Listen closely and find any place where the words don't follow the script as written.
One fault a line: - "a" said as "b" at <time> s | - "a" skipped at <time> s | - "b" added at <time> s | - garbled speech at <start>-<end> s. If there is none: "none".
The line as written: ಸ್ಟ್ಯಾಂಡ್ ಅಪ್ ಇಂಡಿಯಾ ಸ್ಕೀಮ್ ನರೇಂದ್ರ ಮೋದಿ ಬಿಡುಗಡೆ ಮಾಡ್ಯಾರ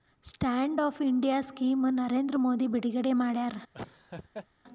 none